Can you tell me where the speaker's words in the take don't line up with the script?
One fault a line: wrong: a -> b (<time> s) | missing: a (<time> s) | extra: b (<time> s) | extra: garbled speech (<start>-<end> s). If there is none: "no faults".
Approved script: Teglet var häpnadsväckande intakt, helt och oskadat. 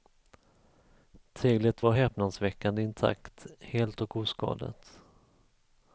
no faults